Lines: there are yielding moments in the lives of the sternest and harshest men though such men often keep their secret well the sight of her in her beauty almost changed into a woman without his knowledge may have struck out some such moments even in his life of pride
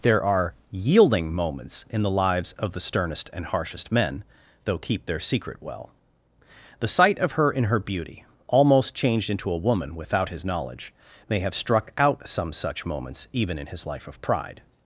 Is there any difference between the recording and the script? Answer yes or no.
yes